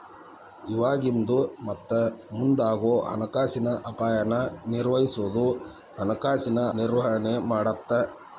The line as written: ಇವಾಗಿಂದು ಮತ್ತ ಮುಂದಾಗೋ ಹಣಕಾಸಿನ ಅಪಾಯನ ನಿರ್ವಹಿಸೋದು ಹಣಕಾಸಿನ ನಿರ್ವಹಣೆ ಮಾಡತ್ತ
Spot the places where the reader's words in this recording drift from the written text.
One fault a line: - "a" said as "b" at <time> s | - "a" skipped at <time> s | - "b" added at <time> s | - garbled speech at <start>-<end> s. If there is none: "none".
none